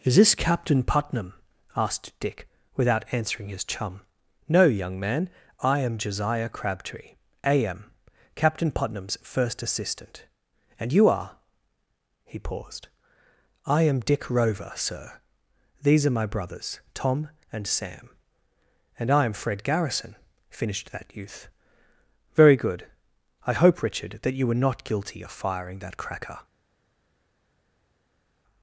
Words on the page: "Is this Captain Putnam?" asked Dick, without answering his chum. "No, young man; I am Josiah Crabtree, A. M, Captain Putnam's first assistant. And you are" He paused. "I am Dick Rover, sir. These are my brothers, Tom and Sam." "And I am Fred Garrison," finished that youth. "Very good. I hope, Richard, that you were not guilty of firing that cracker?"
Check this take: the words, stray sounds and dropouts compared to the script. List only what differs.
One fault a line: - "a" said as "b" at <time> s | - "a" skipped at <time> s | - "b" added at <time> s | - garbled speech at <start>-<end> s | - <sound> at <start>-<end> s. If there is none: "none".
none